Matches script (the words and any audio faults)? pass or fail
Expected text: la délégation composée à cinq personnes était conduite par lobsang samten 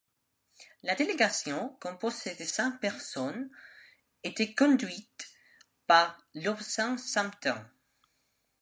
fail